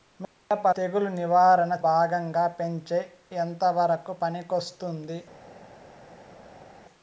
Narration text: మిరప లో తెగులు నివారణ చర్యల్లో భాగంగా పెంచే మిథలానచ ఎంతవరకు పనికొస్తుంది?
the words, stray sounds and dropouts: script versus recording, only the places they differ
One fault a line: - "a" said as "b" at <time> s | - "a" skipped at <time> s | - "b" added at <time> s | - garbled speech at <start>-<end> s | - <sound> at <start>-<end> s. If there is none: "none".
- "లో" skipped at 0.7 s
- "చర్యల్లో" skipped at 1.7 s
- "మిథలానచ" skipped at 3.0 s